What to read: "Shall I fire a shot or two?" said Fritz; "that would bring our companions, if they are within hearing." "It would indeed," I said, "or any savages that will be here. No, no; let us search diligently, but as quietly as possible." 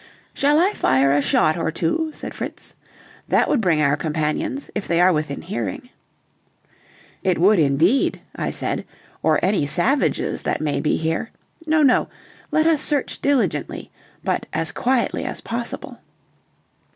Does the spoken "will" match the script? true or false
false